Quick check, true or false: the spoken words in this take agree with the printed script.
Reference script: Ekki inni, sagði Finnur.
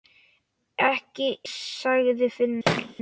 false